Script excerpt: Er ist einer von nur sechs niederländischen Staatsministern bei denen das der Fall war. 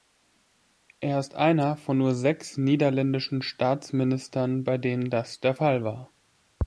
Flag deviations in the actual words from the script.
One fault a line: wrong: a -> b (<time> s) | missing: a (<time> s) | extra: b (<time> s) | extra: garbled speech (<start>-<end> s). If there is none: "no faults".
no faults